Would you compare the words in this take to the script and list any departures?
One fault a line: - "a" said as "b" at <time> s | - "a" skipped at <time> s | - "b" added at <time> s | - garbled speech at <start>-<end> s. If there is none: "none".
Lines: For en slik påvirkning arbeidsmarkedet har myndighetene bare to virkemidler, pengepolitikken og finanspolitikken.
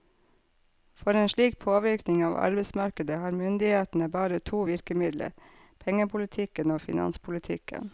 - "av" added at 2.2 s